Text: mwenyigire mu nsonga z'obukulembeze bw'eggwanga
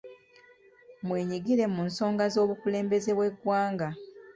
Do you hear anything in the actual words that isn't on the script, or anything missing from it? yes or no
no